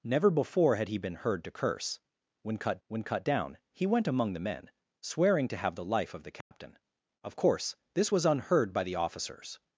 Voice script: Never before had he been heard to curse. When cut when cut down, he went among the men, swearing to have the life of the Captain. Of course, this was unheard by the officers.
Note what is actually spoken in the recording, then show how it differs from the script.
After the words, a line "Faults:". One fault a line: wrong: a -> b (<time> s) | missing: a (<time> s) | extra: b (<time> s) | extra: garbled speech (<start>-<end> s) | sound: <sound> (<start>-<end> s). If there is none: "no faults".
Never before had he been heard to curse. When cut when cut down, he went among the men, swearing to have the life of the Captain. Of course, this was unheard by the officers.
Faults:
sound: dropout (6.4-6.5 s)